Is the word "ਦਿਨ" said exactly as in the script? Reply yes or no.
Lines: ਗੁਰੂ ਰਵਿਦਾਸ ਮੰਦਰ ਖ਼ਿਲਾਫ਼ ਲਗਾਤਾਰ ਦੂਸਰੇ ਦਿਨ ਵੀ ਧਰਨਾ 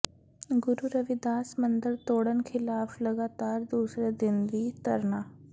yes